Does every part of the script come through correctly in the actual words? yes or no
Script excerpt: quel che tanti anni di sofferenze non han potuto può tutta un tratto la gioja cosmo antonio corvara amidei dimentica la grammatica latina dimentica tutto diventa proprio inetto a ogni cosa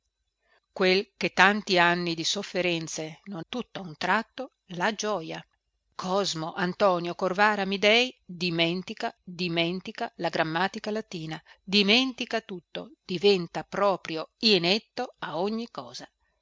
no